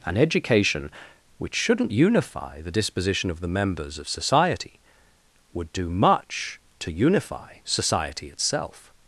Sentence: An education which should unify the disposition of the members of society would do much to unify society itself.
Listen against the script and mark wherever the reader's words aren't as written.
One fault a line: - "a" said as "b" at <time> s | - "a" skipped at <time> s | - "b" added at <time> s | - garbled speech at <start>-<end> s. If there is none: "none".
- "should" said as "shouldn't" at 1.6 s